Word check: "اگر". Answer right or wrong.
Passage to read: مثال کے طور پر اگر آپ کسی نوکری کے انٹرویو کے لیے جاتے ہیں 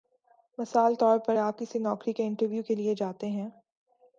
wrong